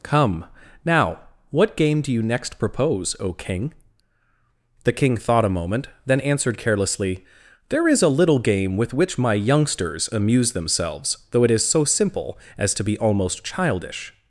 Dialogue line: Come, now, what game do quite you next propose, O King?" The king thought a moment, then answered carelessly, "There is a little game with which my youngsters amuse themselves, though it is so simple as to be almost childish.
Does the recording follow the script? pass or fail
fail